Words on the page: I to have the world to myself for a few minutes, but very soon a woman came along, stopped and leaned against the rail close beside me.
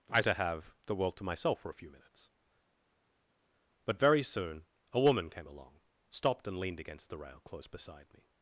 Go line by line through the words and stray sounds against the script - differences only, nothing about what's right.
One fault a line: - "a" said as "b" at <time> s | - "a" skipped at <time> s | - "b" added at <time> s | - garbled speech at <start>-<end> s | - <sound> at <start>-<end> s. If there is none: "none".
none